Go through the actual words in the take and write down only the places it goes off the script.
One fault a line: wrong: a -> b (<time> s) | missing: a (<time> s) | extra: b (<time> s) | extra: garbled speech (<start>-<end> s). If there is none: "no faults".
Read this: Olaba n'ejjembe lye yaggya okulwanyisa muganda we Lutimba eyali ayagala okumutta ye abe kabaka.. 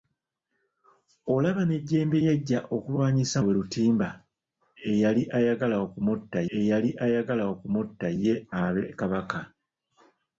missing: lye (2.2 s)
missing: muganda (3.4 s)
extra: eyali ayagala okumutta (6.6 s)